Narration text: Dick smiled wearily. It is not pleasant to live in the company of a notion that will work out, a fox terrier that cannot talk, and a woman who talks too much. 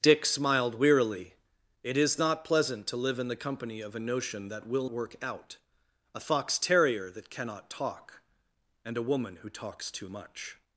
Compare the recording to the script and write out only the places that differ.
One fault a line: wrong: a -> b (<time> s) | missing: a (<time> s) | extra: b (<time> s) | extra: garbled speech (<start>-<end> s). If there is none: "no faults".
no faults